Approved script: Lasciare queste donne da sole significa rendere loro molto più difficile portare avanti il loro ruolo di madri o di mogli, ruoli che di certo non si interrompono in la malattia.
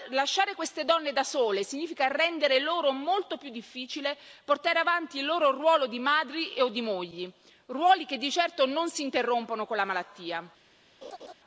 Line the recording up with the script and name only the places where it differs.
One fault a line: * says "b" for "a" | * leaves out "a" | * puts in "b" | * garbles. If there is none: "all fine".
* says "con" for "in"